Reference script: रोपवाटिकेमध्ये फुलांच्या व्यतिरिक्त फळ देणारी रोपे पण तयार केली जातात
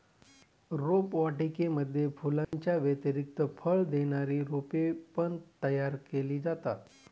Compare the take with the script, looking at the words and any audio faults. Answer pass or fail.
fail